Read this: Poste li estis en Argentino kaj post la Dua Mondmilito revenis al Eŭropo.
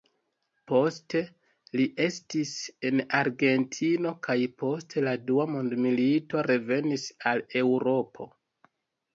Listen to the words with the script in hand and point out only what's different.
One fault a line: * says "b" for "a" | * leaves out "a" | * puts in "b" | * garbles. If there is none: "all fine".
all fine